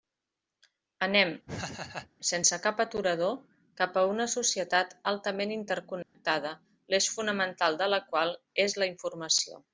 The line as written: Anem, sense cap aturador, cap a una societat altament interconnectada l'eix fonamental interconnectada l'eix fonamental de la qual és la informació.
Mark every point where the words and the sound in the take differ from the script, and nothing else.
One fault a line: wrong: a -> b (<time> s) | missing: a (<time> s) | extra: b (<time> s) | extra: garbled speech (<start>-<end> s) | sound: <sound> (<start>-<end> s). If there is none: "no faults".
sound: laugh (1.5-2.1 s)
sound: dropout (6.0-6.1 s)
missing: interconnectada l'eix fonamental (7.8 s)